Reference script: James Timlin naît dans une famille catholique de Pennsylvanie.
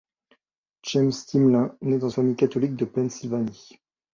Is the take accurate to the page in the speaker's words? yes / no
no